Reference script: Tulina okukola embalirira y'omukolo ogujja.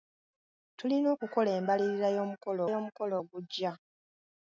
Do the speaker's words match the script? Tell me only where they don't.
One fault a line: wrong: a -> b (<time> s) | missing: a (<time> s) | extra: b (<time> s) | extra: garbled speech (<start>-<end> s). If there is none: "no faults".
extra: y'omukolo (2.7 s)